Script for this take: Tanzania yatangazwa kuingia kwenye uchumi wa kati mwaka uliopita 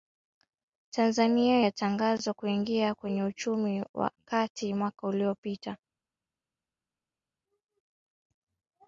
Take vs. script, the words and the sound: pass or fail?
pass